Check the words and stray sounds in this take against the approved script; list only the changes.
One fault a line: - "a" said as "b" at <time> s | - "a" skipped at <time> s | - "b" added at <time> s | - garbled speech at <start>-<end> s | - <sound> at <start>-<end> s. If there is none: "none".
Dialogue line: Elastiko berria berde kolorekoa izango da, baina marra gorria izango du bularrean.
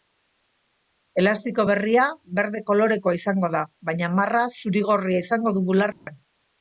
- "zuri" added at 4.6 s
- dropout at 5.9-6.1 s